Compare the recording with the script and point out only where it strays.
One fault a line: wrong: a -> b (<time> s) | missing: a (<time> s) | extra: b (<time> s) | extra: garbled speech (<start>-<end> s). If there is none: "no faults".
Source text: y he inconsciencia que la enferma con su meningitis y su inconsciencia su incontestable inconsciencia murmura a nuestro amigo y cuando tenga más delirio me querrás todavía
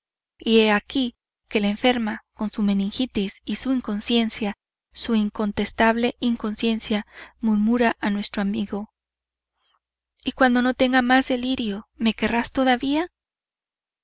wrong: inconsciencia -> aquí (0.7 s)
extra: no (10.6 s)